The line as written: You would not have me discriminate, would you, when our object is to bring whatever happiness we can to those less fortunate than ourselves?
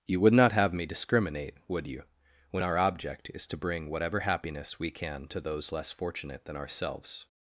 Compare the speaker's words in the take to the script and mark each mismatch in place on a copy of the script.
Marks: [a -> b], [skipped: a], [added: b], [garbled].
You would not have me discriminate, would you, when our object is to bring whatever happiness we can to those less fortunate than ourselves?